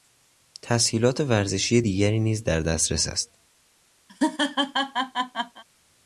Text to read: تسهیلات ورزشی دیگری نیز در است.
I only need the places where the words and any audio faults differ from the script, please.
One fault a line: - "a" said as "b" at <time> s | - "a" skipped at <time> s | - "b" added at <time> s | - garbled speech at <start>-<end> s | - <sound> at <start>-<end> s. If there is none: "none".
- "دسترس" added at 2.6 s
- laugh at 4.1-5.6 s